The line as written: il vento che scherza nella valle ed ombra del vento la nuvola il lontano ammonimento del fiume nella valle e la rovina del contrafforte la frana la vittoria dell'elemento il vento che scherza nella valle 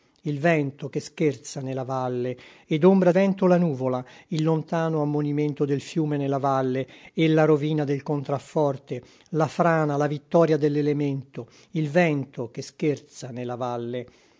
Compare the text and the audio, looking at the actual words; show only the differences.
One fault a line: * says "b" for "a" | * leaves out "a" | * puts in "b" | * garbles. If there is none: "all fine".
* leaves out "del"